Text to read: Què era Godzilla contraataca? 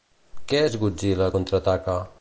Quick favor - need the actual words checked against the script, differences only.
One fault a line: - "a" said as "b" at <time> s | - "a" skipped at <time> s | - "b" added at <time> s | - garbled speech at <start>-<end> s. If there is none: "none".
- "era" said as "és" at 0.7 s